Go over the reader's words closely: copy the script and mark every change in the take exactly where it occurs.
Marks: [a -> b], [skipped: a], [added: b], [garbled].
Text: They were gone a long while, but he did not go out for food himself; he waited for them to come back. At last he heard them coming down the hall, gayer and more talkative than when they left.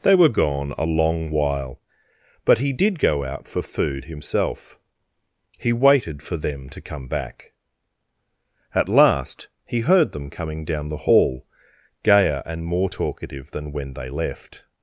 They were gone a long while, but he did [skipped: not] go out for food himself; he waited for them to come back. At last he heard them coming down the hall, gayer and more talkative than when they left.